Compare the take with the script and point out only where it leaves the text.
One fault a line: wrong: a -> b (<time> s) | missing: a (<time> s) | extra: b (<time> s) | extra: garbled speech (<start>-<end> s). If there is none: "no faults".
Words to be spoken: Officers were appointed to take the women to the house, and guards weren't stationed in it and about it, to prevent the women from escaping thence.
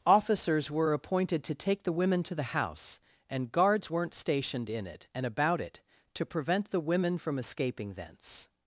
no faults